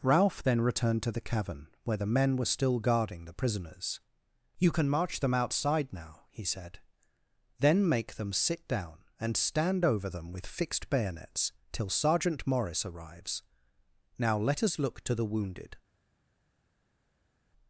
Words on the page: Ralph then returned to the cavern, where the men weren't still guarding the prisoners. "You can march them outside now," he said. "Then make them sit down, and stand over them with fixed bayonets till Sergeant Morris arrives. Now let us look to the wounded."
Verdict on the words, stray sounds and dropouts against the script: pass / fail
fail